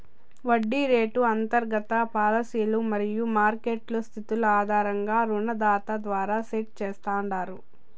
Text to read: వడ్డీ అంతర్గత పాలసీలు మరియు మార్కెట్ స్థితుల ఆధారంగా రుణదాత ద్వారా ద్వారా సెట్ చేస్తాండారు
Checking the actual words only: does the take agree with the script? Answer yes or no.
no